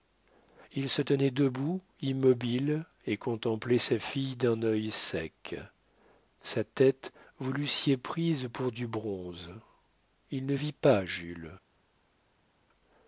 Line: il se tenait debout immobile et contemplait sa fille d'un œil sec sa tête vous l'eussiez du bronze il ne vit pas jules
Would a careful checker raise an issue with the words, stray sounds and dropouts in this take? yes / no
yes